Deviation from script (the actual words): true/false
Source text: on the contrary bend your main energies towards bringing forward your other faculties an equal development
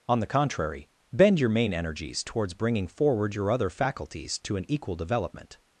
true